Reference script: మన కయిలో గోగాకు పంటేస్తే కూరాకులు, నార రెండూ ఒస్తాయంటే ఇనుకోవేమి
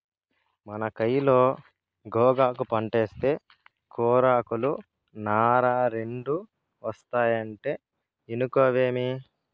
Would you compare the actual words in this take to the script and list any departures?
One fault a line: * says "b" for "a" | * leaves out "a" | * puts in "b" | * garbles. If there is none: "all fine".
all fine